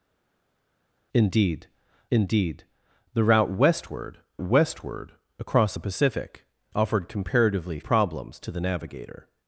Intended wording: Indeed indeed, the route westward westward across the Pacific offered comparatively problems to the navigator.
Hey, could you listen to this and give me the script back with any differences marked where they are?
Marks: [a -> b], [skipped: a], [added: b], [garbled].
Indeed indeed, the route westward westward across the Pacific offered comparatively problems to the navigator.